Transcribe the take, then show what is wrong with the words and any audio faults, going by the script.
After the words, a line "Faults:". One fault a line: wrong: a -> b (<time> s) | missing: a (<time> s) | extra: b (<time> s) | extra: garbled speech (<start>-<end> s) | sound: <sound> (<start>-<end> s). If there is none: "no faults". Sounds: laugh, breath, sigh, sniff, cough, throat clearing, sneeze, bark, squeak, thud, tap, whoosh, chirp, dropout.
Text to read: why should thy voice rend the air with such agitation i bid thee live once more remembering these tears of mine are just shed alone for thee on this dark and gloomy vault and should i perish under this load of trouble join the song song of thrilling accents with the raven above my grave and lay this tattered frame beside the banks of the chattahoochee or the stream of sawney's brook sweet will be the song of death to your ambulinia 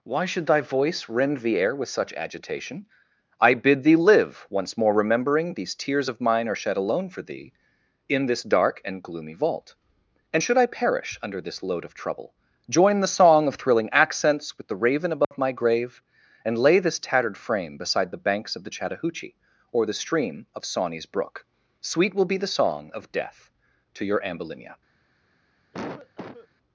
why should thy voice rend the air with such agitation i bid thee live once more remembering these tears of mine are shed alone for thee in this dark and gloomy vault and should i perish under this load of trouble join the song of thrilling accents with the raven above my grave and lay this tattered frame beside the banks of the chattahoochee or the stream of sawney's brook sweet will be the song of death to your ambulinia
Faults:
missing: just (6.6 s)
wrong: on -> in (8.1 s)
missing: song (13.5 s)
sound: dropout (15.2-15.3 s)
sound: cough (25.7-26.5 s)